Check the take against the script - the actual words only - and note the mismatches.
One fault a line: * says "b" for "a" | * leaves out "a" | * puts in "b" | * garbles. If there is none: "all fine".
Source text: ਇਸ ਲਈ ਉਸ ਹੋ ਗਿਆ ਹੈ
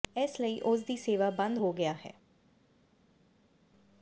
* puts in "ਦੀ ਸੇਵਾ ਬੰਦ"